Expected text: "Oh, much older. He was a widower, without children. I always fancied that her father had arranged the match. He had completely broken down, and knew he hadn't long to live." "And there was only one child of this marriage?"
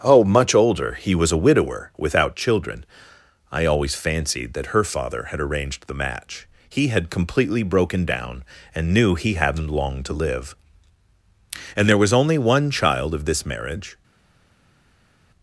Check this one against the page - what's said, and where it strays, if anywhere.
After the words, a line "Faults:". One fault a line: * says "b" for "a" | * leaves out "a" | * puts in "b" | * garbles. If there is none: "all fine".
"Oh, much older. He was a widower, without children. I always fancied that her father had arranged the match. He had completely broken down, and knew he hadn't long to live." "And there was only one child of this marriage?"
Faults:
all fine